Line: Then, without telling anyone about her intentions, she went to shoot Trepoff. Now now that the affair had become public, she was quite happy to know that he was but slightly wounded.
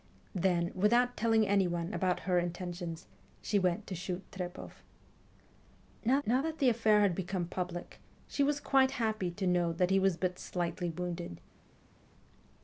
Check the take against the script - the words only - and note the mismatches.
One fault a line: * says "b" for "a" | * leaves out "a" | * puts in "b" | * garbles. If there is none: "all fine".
all fine